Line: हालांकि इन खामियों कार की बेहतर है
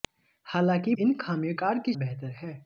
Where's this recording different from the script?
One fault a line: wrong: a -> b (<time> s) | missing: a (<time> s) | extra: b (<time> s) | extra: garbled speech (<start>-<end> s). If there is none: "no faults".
no faults